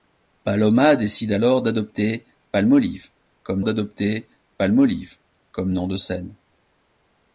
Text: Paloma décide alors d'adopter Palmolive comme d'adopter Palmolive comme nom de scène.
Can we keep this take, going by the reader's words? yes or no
yes